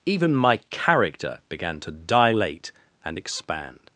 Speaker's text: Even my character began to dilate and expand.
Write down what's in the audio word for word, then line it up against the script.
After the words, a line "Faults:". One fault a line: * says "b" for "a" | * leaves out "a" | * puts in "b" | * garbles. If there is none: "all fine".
Even my character began to dilate and expand.
Faults:
all fine